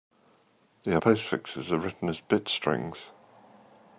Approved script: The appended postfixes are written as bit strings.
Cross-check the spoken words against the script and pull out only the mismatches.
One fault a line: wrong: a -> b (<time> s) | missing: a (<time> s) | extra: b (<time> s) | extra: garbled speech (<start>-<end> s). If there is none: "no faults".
missing: appended (1.0 s)